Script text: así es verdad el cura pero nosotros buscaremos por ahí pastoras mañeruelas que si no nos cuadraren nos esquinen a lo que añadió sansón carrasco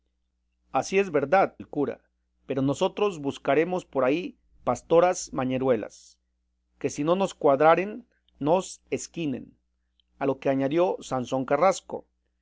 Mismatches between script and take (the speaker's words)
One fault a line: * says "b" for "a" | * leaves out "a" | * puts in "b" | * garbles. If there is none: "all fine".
all fine